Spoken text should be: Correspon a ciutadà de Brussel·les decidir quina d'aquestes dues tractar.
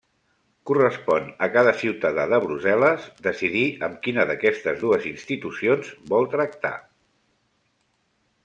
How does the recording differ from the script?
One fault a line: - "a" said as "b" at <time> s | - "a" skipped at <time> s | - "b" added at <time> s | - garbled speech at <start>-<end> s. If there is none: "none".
- "cada" added at 1.6 s
- "amb" added at 3.9 s
- "institucions vol" added at 5.1 s